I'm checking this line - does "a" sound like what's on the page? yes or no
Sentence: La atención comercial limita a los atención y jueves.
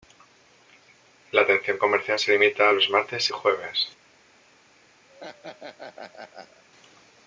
yes